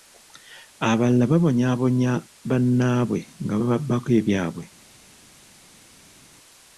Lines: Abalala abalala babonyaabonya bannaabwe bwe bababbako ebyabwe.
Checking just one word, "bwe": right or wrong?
wrong